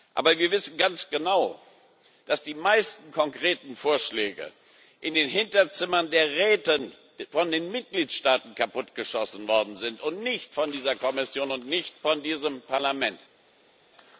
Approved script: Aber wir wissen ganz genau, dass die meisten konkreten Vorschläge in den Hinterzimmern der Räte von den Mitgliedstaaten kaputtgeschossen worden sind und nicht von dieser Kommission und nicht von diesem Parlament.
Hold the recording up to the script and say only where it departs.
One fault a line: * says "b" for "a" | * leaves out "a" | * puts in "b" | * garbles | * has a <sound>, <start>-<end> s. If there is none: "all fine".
all fine